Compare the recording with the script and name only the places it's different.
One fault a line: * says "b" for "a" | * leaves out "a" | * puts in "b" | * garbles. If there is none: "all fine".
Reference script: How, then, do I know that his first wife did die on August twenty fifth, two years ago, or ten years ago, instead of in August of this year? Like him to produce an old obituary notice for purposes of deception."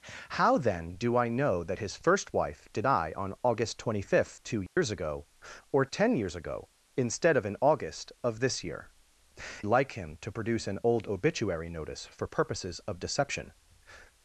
all fine